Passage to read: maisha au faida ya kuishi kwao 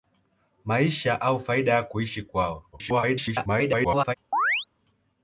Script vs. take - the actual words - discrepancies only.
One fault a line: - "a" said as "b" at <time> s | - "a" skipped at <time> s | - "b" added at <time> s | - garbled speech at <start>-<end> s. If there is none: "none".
- garbled speech at 2.7-4.1 s